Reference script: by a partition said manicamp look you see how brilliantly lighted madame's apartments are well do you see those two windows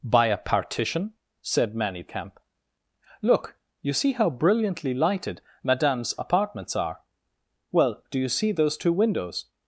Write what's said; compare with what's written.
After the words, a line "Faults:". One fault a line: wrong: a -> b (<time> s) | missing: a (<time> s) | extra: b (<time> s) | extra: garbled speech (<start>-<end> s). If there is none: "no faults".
by a partition said manicamp look you see how brilliantly lighted madame's apartments are well do you see those two windows
Faults:
no faults